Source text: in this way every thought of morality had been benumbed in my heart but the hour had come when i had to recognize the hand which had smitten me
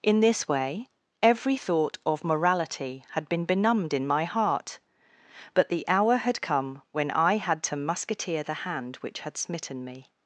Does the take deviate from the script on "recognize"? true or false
true